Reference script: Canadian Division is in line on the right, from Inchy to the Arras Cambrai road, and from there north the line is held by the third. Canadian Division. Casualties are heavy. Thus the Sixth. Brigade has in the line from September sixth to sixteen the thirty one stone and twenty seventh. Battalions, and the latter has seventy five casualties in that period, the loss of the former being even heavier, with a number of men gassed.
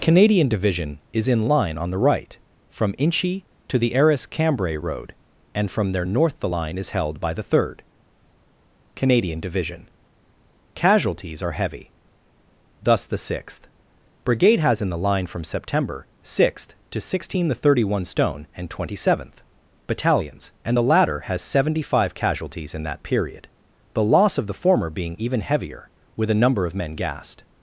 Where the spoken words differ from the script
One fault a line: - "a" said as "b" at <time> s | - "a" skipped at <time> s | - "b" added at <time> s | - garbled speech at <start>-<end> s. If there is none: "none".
none